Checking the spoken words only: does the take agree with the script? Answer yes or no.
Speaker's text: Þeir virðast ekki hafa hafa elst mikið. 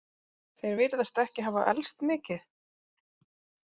no